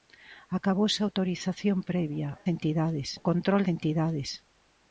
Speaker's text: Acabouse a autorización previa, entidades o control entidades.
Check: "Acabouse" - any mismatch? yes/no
no